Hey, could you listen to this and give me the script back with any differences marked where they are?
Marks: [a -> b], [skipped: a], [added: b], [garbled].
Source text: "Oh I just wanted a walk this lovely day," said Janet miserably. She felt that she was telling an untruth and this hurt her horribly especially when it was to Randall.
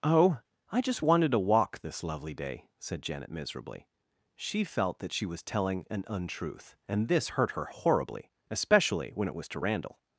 "Oh I just wanted [a -> to] walk this lovely day," said Janet miserably. She felt that she was telling an untruth and this hurt her horribly especially when it was to Randall.